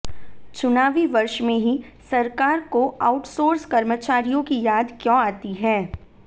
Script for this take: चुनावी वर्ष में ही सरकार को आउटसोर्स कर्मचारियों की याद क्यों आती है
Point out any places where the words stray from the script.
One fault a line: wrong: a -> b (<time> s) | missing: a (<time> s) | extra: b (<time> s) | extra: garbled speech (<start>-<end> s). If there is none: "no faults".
no faults